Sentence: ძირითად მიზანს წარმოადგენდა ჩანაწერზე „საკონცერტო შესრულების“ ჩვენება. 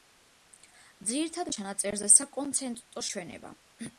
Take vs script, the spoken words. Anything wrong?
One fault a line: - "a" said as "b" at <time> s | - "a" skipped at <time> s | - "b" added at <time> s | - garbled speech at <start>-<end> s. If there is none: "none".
- "მიზანს წარმოადგენდა" skipped at 1.5 s
- "შესრულების" skipped at 3.1 s